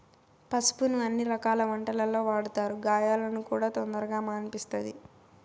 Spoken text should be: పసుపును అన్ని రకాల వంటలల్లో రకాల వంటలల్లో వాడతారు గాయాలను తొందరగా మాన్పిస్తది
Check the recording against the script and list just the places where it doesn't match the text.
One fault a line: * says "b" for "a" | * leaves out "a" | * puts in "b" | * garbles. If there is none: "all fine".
* leaves out "రకాల వంటలల్లో"
* puts in "కూడా"